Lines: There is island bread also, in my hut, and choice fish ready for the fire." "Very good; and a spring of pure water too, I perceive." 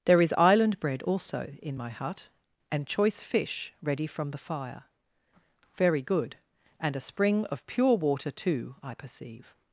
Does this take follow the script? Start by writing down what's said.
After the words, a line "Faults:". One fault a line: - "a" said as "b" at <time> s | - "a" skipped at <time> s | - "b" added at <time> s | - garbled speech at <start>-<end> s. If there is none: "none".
There is island bread also, in my hut, and choice fish ready from the fire." "Very good; and a spring of pure water too, I perceive."
Faults:
- "for" said as "from" at 4.1 s